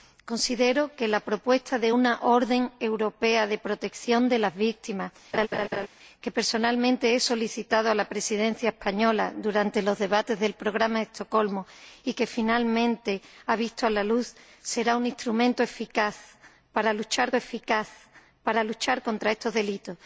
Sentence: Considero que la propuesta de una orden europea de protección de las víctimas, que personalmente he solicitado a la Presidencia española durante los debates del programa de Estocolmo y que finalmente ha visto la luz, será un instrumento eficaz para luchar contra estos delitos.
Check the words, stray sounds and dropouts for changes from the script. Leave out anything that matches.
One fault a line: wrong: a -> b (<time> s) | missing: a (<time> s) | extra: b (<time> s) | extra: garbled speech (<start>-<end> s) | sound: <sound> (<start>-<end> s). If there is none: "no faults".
sound: laugh (5.3-5.9 s)
extra: eficaz para luchar (17.3 s)